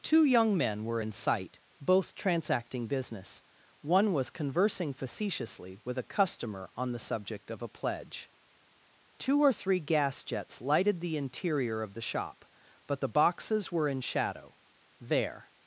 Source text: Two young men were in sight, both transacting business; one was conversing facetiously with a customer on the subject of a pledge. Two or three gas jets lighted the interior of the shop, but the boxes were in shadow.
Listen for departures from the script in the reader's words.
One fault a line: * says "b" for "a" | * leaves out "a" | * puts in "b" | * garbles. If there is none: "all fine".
* puts in "There"